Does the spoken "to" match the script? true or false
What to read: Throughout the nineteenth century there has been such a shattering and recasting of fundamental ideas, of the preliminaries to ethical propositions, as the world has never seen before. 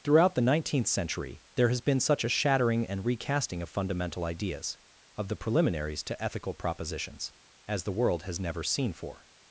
true